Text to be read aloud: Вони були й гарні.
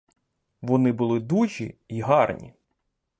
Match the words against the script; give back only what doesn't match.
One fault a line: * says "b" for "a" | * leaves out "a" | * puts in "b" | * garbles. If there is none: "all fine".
* puts in "дужі"